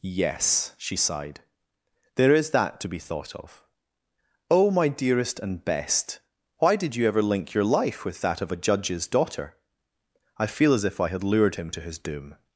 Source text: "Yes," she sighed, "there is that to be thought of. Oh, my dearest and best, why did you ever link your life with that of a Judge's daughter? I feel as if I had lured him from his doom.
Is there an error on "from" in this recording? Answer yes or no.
yes